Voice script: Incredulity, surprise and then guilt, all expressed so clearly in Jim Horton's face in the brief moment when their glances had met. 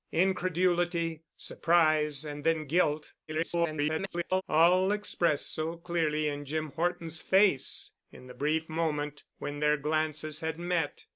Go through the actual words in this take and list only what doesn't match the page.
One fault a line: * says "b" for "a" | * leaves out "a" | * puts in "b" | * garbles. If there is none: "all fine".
* garbles